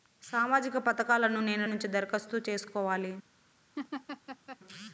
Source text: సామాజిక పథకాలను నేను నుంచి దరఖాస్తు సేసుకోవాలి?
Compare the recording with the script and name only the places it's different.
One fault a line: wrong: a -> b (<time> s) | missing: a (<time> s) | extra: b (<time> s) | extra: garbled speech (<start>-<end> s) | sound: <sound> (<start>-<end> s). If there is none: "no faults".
sound: laugh (3.8-4.6 s)